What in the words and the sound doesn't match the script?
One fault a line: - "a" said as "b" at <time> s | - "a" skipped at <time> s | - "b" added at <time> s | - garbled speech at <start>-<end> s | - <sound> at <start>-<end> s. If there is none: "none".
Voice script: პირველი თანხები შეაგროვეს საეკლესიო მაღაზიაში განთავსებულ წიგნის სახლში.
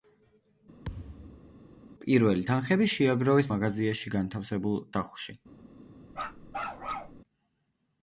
- thud at 0.8-1.5 s
- "საეკლესიო" skipped at 3.5 s
- "წიგნის" skipped at 4.8 s
- bark at 6.1-7.2 s